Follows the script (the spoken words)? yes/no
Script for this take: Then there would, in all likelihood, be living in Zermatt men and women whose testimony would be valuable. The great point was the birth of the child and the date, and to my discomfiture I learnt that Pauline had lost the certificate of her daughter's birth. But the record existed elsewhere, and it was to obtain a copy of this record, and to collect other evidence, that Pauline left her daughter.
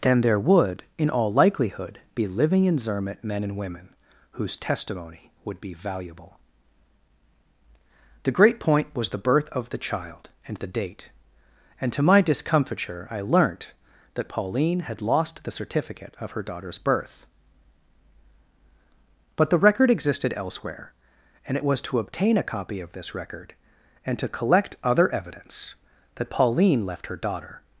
yes